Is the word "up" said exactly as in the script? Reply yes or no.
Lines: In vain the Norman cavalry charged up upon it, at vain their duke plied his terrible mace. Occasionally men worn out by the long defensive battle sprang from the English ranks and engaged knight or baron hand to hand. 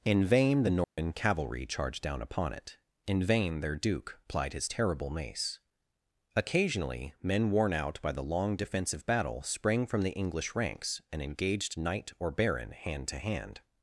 no